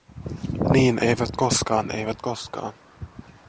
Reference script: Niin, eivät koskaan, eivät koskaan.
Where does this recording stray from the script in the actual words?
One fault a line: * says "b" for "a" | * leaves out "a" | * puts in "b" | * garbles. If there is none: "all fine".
all fine